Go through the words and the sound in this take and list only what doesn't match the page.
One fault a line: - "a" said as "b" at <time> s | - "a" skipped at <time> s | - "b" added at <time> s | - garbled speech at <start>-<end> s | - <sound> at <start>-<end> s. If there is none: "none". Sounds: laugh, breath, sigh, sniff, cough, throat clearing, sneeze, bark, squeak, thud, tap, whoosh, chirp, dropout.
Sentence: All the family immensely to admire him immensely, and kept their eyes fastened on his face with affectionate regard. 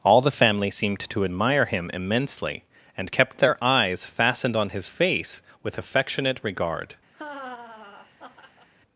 - "immensely" said as "seemed" at 0.7 s
- laugh at 7.1-8.7 s